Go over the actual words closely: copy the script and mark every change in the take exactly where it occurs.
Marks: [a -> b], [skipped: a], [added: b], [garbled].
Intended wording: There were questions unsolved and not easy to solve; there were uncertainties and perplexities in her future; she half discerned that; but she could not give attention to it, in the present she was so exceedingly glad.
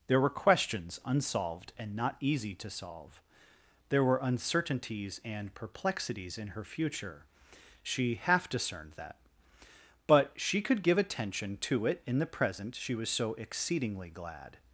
There were questions unsolved and not easy to solve; there were uncertainties and perplexities in her future; she half discerned that; but she could [skipped: not] give attention to it, in the present she was so exceedingly glad.